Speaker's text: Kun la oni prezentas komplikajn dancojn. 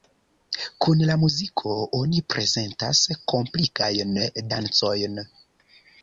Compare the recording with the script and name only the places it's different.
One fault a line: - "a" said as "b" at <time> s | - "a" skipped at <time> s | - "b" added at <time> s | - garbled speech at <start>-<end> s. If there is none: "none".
- "muziko" added at 1.2 s